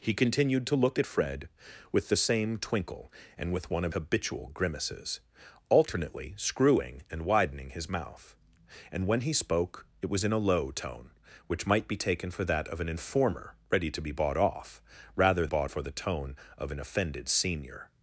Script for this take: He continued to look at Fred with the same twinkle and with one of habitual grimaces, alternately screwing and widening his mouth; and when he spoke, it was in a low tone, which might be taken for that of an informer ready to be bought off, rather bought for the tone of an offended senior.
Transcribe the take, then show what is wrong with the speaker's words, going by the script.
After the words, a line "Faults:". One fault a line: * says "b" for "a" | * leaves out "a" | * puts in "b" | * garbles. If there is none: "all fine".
He continued to look at Fred with the same twinkle and with one of habitual grimaces, alternately screwing and widening his mouth; and when he spoke, it was in a low tone, which might be taken for that of an informer ready to be bought off, rather bought for the tone of an offended senior.
Faults:
all fine